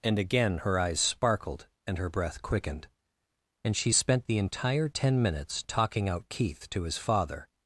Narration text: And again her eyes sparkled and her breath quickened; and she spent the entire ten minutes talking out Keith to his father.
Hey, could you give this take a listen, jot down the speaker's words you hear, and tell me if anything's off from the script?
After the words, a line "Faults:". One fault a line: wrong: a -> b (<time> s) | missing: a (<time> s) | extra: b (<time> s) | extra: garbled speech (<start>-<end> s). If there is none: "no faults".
And again her eyes sparkled and her breath quickened; and she spent the entire ten minutes talking out Keith to his father.
Faults:
no faults